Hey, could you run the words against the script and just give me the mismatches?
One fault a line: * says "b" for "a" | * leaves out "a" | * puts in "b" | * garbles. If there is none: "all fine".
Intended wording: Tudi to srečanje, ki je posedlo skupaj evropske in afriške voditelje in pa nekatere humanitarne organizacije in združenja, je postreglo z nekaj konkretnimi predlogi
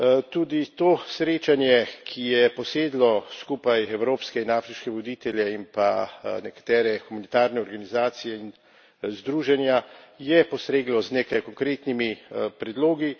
all fine